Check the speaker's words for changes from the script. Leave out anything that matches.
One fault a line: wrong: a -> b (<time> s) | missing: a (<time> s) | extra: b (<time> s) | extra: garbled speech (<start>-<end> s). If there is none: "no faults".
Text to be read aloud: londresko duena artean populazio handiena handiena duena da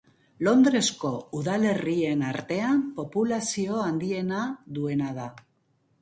wrong: duena -> udalerrien (1.4 s)
missing: handiena (4.4 s)